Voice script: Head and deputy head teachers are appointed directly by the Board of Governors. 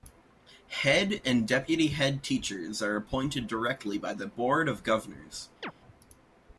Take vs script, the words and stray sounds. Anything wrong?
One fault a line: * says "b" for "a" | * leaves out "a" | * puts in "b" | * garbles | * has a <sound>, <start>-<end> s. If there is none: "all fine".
* has a chirp, 5.6-5.7 s